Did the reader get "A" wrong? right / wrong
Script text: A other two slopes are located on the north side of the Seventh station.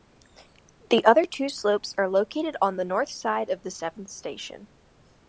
wrong